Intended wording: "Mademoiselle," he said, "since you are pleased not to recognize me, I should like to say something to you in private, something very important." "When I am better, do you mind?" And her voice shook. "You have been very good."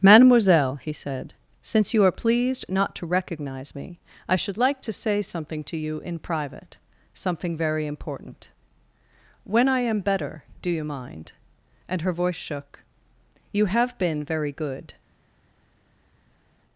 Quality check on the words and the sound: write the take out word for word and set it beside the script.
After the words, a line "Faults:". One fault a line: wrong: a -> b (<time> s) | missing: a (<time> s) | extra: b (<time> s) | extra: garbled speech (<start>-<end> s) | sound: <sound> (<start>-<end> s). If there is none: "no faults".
"Mademoiselle," he said, "since you are pleased not to recognize me, I should like to say something to you in private, something very important." "When I am better, do you mind?" And her voice shook. "You have been very good."
Faults:
no faults